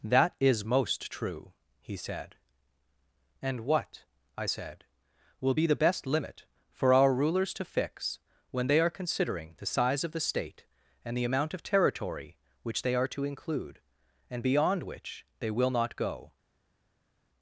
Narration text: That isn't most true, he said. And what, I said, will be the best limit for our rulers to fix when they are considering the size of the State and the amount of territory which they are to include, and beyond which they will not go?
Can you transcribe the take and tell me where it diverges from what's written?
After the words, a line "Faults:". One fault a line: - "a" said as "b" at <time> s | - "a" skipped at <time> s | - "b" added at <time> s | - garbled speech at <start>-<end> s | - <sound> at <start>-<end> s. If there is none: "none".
That is most true, he said. And what, I said, will be the best limit for our rulers to fix when they are considering the size of the State and the amount of territory which they are to include, and beyond which they will not go?
Faults:
- "isn't" said as "is" at 0.4 s